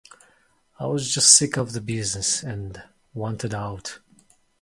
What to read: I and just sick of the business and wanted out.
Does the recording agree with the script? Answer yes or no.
no